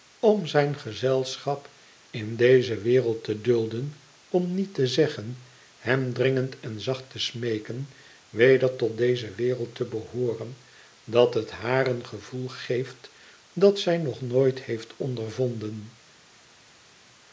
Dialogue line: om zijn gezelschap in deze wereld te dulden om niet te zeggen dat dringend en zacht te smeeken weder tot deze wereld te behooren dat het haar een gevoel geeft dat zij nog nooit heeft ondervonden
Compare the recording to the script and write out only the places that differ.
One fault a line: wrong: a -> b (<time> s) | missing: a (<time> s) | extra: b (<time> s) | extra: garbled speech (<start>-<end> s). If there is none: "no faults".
wrong: dat -> hem (5.8 s)